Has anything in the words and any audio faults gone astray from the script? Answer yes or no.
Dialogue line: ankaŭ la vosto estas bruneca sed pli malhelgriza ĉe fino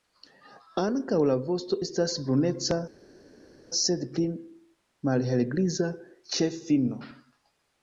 no